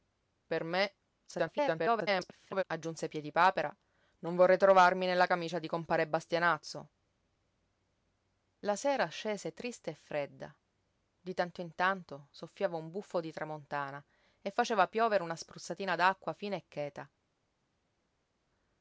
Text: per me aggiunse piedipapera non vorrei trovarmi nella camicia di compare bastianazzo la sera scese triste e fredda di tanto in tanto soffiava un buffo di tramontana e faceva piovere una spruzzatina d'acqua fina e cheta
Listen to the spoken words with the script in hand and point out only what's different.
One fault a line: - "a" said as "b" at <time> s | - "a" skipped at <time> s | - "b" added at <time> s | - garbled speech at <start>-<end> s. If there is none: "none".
- garbled speech at 1.3-2.6 s